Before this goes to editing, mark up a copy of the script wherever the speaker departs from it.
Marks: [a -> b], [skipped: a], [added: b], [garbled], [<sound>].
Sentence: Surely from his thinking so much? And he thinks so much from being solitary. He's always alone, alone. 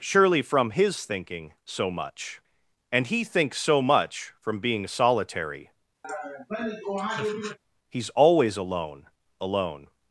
Surely from his thinking so much? And he thinks so much from being solitary. [laugh] He's always alone, alone.